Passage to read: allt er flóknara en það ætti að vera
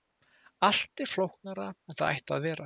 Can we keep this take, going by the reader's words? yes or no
yes